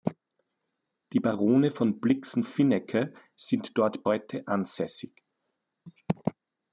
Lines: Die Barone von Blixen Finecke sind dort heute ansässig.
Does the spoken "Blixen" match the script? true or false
true